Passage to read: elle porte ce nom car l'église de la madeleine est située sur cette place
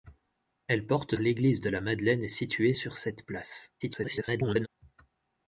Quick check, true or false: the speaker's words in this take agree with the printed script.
false